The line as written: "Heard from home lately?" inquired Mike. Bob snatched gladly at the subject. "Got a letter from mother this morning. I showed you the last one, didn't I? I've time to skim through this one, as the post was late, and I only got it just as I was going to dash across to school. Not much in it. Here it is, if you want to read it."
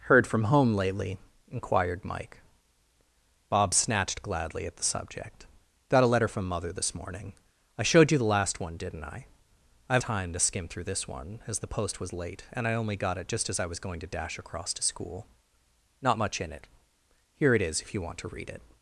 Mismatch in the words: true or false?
false